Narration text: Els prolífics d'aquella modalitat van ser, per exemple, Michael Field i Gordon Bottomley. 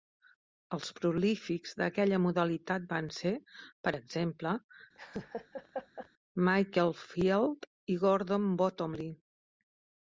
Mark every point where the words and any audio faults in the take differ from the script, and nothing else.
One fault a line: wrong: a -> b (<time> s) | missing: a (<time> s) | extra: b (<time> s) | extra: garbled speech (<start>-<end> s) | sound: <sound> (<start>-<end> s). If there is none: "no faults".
sound: laugh (4.9-6.1 s)